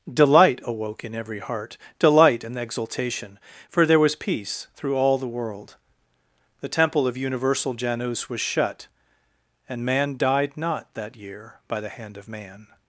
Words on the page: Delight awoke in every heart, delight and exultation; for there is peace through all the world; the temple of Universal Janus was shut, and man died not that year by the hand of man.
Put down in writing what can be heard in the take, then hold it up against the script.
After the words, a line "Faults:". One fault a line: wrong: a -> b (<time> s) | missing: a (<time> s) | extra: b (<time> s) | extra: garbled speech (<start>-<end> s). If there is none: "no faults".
Delight awoke in every heart, delight and exultation; for there was peace through all the world; the temple of Universal Janus was shut, and man died not that year by the hand of man.
Faults:
wrong: is -> was (4.0 s)